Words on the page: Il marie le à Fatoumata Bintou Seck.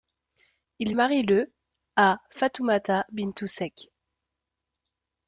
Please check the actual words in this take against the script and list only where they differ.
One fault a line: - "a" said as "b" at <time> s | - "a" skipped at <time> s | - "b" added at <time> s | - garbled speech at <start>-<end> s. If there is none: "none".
none